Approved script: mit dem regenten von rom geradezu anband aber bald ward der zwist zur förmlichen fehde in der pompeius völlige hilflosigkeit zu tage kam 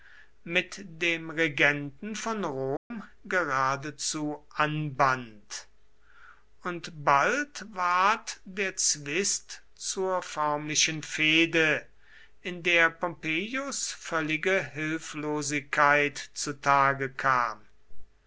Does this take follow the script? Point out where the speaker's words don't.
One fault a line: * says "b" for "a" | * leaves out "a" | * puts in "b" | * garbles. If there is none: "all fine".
* says "und" for "aber"